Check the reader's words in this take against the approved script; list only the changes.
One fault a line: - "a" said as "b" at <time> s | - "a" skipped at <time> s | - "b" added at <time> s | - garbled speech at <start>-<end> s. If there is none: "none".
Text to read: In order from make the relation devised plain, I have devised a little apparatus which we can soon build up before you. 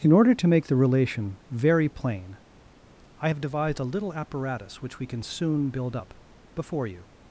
- "from" said as "to" at 0.3 s
- "devised" said as "very" at 1.5 s